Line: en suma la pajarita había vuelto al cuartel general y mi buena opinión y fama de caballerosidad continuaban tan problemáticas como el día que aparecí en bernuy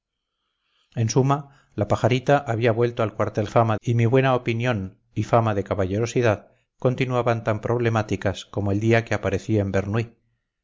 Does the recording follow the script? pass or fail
fail